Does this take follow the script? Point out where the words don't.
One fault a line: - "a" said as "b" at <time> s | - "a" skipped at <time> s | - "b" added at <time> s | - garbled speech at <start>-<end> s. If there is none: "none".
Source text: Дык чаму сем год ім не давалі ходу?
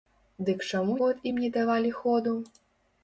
- "сем" skipped at 0.9 s